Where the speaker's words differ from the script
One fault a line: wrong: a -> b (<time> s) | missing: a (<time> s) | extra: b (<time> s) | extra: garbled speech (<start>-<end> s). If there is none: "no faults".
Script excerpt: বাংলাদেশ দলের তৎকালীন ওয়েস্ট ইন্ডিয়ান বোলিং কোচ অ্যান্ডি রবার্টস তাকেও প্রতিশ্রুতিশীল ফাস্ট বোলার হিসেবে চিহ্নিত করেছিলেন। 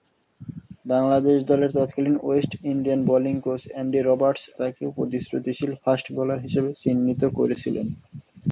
no faults